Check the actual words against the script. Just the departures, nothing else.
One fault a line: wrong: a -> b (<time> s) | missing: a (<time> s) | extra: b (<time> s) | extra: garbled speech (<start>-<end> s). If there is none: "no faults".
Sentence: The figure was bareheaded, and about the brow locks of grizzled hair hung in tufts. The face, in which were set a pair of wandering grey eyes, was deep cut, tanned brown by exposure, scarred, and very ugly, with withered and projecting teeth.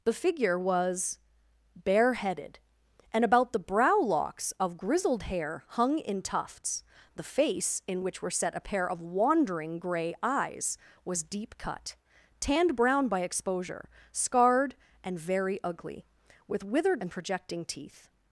no faults